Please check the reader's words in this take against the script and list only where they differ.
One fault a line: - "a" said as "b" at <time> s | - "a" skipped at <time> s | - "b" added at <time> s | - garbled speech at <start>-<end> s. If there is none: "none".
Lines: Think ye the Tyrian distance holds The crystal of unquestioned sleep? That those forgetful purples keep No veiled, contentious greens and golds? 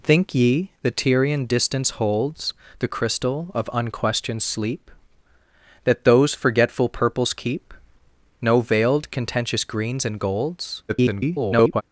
- garbled speech at 10.9-11.8 s